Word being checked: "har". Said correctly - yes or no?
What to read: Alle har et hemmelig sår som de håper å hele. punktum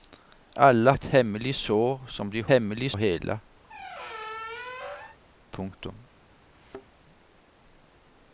no